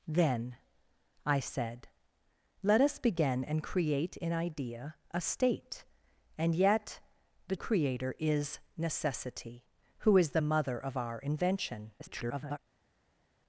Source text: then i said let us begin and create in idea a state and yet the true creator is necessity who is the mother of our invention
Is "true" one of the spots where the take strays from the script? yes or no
yes